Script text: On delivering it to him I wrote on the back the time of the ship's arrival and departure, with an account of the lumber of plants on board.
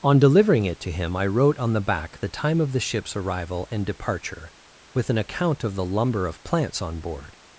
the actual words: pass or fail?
pass